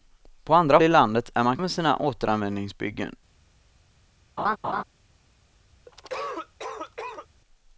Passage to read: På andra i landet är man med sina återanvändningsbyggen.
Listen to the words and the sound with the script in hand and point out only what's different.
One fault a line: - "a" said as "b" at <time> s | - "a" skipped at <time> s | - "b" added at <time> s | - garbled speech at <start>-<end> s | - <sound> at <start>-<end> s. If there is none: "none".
- laugh at 4.4-4.8 s
- cough at 5.9-7.3 s